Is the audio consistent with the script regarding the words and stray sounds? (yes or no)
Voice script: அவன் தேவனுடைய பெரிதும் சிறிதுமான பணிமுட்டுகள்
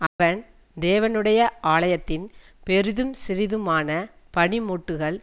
no